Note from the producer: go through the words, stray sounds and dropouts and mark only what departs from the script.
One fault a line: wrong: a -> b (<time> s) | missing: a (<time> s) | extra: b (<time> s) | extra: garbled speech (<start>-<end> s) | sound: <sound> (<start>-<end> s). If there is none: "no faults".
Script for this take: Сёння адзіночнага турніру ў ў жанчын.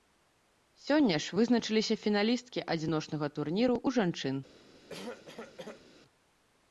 extra: ж вызначыліся фіналісткі (1.2 s)
missing: ў (4.0 s)
sound: cough (4.9-5.9 s)